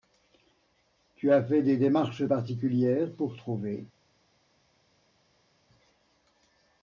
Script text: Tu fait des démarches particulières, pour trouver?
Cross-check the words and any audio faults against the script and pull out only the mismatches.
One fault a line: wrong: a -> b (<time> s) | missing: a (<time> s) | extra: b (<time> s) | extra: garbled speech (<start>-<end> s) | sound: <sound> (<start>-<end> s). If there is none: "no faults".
extra: as (1.3 s)